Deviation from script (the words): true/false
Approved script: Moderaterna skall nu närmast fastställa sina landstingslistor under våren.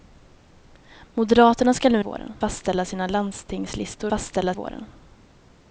true